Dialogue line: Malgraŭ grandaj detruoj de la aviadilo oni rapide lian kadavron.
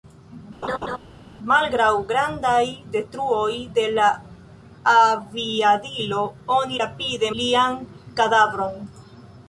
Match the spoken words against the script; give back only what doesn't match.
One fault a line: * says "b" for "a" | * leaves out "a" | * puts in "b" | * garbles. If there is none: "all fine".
all fine